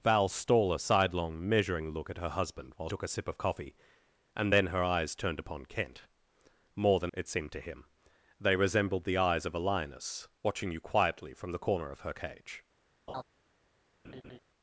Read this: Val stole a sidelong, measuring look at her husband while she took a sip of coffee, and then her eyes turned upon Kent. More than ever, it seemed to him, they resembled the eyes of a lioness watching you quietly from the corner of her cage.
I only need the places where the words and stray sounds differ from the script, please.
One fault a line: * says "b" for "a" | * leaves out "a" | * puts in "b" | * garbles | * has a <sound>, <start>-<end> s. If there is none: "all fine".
* leaves out "she"
* leaves out "ever"
* has a laugh, 13.1-13.2 s
* has a laugh, 14.0-14.4 s